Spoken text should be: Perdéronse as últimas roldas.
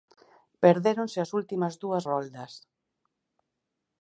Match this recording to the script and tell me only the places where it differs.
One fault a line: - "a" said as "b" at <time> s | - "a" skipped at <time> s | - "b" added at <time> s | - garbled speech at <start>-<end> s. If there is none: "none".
- "dúas" added at 1.8 s